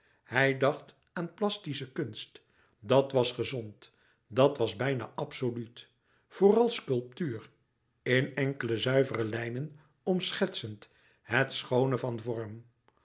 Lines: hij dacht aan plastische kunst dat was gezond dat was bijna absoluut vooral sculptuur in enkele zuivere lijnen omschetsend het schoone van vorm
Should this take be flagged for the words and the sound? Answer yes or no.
no